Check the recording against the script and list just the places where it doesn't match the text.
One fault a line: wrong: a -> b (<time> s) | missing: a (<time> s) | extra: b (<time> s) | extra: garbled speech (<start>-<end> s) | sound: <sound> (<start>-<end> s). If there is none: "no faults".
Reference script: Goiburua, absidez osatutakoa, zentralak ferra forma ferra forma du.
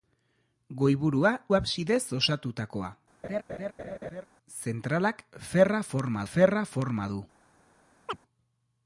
sound: laugh (3.2-4.3 s)
sound: chirp (8.1-8.2 s)